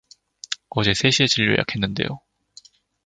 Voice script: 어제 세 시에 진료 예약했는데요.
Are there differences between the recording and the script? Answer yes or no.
no